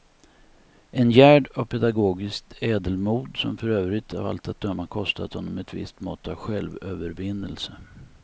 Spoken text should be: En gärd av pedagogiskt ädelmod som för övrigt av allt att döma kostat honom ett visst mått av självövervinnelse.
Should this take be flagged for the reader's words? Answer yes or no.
no